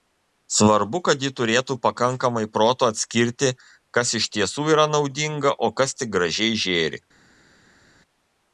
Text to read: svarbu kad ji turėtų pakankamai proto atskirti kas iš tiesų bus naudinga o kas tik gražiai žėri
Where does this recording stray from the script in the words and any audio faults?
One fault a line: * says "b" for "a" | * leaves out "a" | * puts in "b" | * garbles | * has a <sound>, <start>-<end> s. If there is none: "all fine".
* says "yra" for "bus"